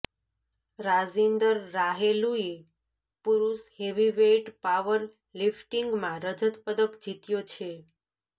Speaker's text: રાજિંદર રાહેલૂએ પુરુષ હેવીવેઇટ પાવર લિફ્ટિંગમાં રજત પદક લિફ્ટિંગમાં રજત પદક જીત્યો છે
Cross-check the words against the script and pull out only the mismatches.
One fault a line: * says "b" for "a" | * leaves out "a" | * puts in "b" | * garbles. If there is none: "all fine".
* leaves out "લિફ્ટિંગમાં રજત પદક"